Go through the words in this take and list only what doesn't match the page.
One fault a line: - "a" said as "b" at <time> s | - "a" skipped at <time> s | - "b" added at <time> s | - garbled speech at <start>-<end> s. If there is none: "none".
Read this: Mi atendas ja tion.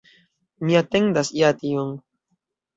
none